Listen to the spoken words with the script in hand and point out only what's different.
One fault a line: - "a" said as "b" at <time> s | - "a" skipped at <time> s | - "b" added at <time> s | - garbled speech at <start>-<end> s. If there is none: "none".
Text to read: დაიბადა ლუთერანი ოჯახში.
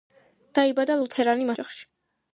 none